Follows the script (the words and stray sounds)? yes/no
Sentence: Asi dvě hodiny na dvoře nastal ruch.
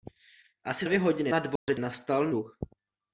no